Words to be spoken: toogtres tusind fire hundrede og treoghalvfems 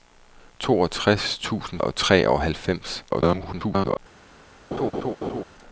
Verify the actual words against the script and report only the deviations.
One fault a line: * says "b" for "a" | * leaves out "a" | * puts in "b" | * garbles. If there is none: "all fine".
* leaves out "fire hundrede"
* garbles